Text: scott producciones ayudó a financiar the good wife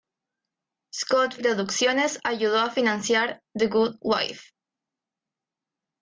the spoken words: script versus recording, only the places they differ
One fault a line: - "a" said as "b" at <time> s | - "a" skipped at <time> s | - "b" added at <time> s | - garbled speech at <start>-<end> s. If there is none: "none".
none